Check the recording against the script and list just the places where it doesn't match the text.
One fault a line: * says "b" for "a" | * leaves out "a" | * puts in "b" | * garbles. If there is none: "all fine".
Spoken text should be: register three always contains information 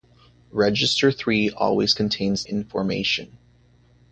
all fine